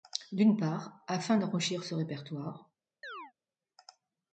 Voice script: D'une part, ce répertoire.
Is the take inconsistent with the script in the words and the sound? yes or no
yes